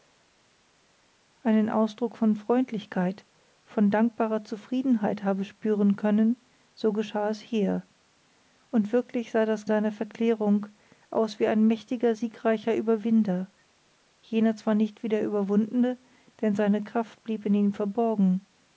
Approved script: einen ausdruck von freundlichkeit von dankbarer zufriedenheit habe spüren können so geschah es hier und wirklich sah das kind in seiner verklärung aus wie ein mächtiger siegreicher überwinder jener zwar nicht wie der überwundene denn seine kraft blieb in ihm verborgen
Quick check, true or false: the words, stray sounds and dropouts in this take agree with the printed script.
false